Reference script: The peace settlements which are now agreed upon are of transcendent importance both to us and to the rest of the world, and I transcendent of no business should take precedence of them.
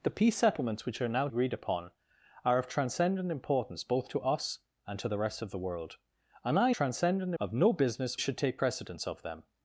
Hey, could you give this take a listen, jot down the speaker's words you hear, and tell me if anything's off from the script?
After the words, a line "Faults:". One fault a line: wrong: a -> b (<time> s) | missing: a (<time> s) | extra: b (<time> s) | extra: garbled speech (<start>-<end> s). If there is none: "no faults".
The peace settlements which are now agreed upon are of transcendent importance both to us and to the rest of the world, and I transcendent of no business should take precedence of them.
Faults:
no faults